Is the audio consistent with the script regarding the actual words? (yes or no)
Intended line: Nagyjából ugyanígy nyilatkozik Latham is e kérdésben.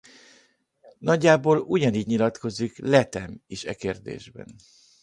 yes